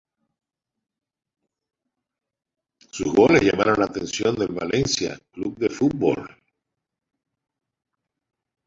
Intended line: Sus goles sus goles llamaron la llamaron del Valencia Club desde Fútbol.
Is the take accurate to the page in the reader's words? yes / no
no